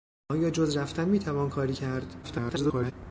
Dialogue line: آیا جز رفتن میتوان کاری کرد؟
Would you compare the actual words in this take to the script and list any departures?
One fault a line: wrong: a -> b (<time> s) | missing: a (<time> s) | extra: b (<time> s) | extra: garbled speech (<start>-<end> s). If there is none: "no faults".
extra: garbled speech (2.2-2.9 s)